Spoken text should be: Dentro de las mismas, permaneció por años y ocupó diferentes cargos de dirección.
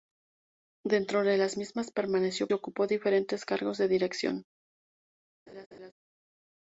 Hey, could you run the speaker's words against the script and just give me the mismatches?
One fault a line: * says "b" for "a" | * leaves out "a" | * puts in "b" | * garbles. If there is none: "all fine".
* leaves out "por años"